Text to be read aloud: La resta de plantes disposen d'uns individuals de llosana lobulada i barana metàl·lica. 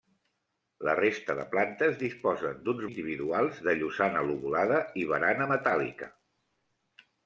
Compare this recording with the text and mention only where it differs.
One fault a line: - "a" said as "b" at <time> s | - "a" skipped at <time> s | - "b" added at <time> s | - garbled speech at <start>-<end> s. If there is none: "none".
none